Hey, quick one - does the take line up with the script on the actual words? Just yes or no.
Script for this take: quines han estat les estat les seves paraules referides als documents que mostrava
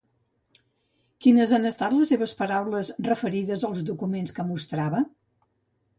no